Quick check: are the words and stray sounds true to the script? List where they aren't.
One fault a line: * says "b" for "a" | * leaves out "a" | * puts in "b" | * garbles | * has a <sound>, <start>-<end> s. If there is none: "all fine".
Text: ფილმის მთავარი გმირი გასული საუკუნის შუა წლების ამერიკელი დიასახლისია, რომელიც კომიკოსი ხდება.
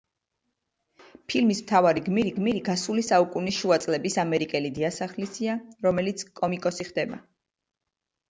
* puts in "გმირი"